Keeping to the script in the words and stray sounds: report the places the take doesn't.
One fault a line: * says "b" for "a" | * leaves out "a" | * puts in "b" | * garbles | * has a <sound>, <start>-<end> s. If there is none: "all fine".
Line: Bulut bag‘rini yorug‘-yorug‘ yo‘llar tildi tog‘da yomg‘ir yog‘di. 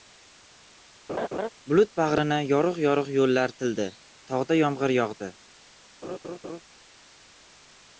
* has a laugh, 1.1-1.5 s
* has a laugh, 6.0-6.6 s